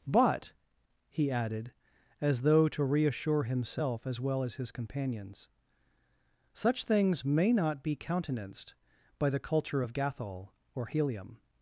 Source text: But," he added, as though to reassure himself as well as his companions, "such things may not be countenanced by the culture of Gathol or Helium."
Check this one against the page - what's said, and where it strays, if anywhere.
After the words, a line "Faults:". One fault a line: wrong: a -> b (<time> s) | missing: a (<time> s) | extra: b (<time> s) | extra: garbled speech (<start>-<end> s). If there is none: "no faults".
But," he added, as though to reassure himself as well as his companions, "such things may not be countenanced by the culture of Gathol or Helium."
Faults:
no faults